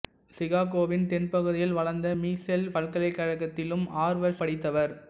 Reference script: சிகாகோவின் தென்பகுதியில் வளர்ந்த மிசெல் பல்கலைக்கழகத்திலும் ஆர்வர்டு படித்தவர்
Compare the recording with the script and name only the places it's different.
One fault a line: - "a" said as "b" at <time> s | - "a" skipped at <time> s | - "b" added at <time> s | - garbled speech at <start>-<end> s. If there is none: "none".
none